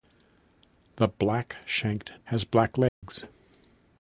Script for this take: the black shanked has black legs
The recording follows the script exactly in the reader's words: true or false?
true